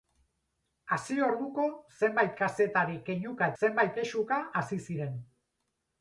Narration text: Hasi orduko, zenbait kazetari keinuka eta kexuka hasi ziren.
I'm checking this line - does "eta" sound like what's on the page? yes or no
no